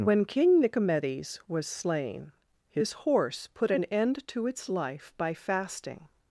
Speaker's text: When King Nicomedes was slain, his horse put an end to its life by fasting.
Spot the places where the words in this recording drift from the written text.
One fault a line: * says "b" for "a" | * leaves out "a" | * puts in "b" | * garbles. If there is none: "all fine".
all fine